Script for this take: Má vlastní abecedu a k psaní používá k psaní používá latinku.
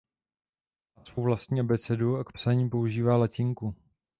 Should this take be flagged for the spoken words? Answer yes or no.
yes